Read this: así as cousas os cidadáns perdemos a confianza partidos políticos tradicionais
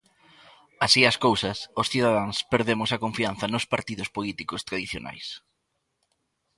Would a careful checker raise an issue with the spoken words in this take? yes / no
yes